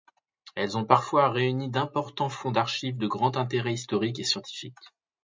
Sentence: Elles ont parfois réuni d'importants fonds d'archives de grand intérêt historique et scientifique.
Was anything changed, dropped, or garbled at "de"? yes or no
no